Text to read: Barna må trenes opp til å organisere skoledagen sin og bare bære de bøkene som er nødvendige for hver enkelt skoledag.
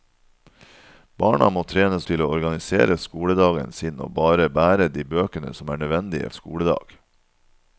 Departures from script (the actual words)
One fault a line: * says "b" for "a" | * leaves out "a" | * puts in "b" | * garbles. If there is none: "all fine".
* leaves out "opp"
* leaves out "for hver enkelt"